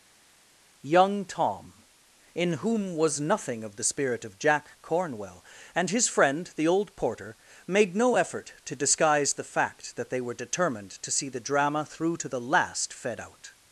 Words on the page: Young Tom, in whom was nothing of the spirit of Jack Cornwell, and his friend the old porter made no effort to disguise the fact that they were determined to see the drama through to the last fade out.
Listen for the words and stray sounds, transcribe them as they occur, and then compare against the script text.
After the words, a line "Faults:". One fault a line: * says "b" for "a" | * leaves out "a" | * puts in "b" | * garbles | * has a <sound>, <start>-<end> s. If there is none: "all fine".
Young Tom, in whom was nothing of the spirit of Jack Cornwell, and his friend the old porter made no effort to disguise the fact that they were determined to see the drama through to the last fed out.
Faults:
* says "fed" for "fade"